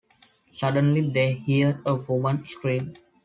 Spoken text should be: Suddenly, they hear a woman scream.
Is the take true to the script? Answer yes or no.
yes